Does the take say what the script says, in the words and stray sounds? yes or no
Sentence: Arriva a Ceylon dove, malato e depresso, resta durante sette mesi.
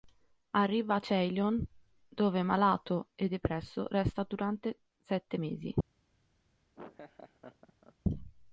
no